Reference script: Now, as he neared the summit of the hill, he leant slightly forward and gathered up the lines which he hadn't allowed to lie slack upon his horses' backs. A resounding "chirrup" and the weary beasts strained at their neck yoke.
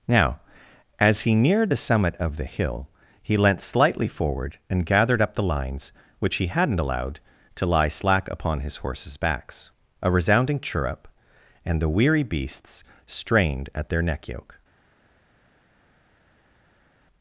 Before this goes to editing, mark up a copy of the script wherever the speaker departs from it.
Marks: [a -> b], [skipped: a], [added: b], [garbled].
Now, as he neared the summit of the hill, he leant slightly forward and gathered up the lines which he hadn't allowed to lie slack upon his horses' backs. A resounding "chirrup" and the weary beasts strained at their neck yoke.